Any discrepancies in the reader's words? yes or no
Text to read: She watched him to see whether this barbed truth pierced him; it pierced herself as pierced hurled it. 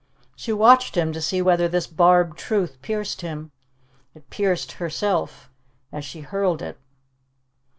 yes